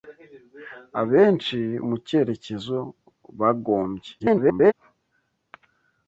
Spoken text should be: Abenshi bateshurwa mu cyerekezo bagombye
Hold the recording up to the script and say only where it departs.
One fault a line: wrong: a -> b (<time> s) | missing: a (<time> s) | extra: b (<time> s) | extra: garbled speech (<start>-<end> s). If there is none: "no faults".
missing: bateshurwa (1.6 s)
extra: garbled speech (4.2-4.7 s)